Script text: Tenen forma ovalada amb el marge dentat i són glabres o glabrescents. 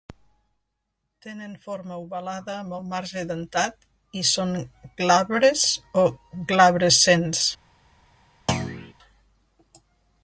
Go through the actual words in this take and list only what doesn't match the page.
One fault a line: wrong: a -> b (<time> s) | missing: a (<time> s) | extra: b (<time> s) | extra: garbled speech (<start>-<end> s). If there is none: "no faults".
no faults